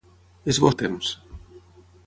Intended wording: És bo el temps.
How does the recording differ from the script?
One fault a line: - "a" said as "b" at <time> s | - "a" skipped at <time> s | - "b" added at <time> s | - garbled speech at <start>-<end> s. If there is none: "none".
none